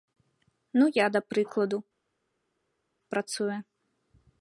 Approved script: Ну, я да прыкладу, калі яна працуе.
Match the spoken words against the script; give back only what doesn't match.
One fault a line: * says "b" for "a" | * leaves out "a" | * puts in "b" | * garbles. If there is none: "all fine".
* leaves out "калі яна"